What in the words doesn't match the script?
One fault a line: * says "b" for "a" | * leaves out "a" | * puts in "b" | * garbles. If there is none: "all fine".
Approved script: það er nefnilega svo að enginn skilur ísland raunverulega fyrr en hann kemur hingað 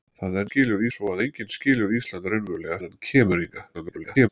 * says "skilur" for "nefnilega"
* leaves out "fyrr"
* garbles